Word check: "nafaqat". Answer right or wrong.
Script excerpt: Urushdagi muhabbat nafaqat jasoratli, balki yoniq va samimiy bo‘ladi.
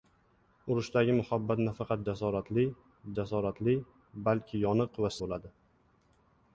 right